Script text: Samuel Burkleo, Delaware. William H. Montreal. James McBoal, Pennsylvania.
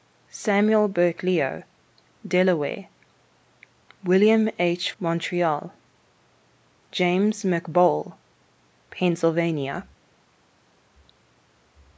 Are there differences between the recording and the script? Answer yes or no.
no